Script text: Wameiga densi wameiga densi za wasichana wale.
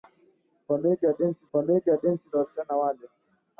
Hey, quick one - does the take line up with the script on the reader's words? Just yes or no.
yes